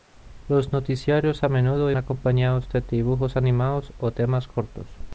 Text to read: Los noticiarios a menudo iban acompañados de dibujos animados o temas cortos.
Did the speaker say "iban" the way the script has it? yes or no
no